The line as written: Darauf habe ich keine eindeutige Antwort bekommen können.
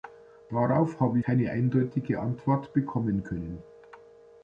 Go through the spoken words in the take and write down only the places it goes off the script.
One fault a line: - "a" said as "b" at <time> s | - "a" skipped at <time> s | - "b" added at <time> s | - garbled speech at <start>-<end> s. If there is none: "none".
- "ich" skipped at 1.2 s